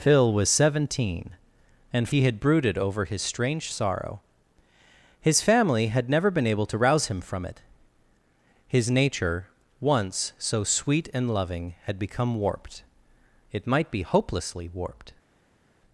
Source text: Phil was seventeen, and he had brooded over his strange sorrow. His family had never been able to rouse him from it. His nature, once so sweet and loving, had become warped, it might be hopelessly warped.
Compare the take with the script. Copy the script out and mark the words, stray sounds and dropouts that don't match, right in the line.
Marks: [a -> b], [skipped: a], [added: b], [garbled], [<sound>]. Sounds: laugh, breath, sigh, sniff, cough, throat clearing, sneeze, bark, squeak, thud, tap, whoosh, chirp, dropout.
Phil was seventeen, and he had brooded over his strange sorrow. His family had never been able to rouse him from it. His nature, once so sweet and loving, had become warped, it might be hopelessly warped.